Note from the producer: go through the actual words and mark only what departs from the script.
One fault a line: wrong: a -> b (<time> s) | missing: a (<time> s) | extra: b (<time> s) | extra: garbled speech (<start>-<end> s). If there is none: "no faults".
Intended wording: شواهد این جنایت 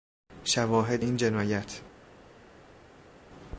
no faults